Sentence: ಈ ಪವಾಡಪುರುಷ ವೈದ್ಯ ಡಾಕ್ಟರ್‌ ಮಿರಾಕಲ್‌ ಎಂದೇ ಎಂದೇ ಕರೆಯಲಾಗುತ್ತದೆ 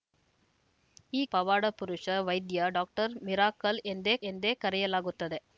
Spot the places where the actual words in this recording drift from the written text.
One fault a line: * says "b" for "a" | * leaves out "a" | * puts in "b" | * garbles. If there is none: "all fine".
all fine